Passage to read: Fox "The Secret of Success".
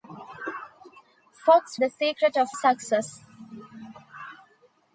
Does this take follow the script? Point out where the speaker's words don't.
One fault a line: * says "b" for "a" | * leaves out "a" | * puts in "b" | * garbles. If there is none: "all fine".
all fine